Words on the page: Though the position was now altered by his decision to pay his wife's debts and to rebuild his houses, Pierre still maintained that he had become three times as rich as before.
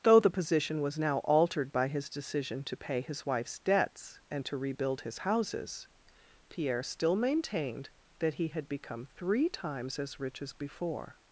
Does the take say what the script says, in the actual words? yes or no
yes